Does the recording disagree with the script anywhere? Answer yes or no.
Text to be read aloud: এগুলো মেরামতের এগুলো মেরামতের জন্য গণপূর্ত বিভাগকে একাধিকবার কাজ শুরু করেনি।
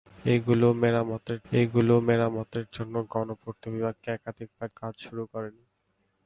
no